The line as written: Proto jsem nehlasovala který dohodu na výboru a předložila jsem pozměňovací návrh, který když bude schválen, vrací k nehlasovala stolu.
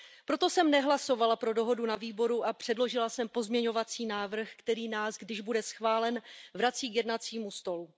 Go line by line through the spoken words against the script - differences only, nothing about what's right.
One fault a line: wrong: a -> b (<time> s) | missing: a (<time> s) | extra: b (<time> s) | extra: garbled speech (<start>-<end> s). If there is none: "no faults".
wrong: který -> pro (1.4 s)
extra: nás (4.9 s)
wrong: nehlasovala -> jednacímu (7.0 s)